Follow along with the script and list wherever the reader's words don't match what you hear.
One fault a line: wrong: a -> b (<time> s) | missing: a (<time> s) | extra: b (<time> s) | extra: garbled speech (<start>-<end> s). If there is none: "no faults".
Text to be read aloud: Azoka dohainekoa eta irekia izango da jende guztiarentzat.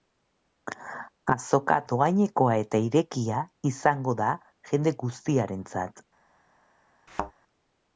no faults